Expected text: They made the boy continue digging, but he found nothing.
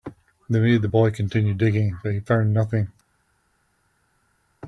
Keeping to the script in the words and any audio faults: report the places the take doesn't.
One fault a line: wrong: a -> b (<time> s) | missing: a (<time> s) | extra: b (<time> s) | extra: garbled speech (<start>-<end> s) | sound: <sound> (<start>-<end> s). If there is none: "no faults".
no faults